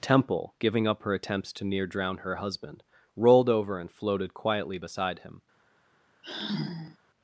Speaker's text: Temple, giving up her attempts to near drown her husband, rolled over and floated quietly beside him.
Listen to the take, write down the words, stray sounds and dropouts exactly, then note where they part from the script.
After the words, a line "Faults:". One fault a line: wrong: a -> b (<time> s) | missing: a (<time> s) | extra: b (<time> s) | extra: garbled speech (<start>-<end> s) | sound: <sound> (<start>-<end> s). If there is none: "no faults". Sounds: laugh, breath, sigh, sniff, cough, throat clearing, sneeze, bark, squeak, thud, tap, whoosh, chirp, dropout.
Temple, giving up her attempts to near drown her husband, rolled over and floated quietly beside him.
Faults:
sound: sigh (6.2-7.0 s)